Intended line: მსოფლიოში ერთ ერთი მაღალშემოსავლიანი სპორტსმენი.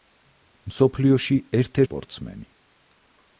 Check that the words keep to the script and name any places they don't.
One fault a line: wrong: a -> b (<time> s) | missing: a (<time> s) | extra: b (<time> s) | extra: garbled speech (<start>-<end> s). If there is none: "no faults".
missing: ერთი მაღალშემოსავლიანი (1.8 s)